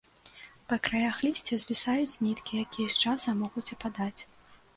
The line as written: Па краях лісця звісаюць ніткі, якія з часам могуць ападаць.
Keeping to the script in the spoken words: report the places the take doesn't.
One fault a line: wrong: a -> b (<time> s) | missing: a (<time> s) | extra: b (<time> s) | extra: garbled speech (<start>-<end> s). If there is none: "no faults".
no faults